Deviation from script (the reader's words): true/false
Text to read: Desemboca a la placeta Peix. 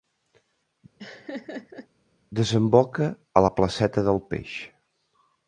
true